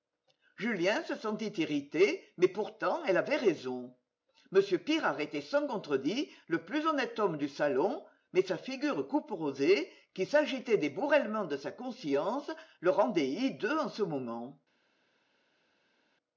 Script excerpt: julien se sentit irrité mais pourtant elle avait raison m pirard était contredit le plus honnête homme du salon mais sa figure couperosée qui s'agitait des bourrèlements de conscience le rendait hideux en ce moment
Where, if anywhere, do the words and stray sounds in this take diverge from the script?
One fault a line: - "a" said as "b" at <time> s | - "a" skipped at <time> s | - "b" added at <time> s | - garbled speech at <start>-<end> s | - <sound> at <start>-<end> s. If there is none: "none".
- "sans" added at 5.4 s
- "sa" added at 11.6 s